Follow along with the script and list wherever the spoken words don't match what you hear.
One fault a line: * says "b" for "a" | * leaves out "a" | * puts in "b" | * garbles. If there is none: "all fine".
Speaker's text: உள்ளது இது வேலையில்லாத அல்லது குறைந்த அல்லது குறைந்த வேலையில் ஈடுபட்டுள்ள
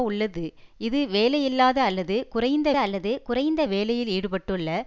all fine